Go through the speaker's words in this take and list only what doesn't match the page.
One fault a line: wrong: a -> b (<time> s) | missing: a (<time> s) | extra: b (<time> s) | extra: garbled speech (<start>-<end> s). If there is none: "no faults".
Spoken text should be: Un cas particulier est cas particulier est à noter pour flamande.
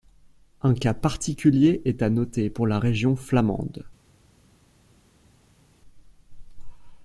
missing: cas particulier est (2.0 s)
extra: la Région (2.7 s)